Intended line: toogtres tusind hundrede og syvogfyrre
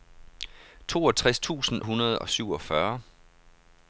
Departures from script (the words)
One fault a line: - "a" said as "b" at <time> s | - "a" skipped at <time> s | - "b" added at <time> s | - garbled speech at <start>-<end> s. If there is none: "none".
none